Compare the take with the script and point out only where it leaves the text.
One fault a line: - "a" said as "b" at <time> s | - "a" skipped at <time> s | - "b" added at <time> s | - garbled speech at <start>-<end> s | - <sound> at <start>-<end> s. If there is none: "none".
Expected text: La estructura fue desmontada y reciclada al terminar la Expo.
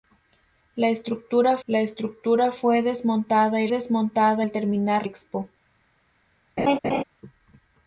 - "la estructura" added at 1.7 s
- "reciclada" said as "desmontada" at 3.7 s
- "la" skipped at 5.1 s
- laugh at 6.6-7.0 s